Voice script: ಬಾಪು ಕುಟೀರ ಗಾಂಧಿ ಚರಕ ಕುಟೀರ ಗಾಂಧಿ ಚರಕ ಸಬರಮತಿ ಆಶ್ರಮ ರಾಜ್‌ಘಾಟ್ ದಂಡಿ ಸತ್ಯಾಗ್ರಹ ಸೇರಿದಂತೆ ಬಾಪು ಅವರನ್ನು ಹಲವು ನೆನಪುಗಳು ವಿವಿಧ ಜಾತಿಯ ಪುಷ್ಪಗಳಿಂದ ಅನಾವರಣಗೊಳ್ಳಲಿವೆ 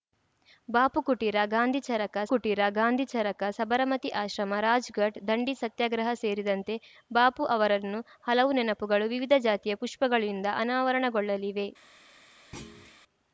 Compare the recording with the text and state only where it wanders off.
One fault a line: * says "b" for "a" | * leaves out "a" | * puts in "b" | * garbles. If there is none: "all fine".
all fine